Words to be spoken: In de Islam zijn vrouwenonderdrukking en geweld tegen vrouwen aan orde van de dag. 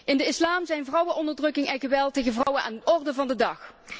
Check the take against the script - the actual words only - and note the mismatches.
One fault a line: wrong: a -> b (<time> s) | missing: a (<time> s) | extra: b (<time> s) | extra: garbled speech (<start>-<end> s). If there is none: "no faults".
no faults